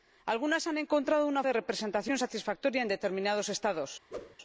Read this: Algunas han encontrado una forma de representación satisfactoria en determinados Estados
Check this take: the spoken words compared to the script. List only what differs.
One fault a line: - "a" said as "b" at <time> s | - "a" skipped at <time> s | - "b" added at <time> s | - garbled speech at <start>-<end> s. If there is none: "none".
- "forma" skipped at 1.4 s